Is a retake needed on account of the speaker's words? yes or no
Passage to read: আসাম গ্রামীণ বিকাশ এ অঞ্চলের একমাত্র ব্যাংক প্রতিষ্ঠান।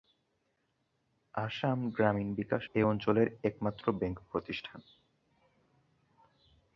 no